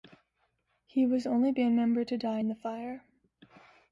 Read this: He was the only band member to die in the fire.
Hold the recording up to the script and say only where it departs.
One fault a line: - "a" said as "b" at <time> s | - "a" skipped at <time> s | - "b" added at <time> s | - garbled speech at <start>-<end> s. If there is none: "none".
none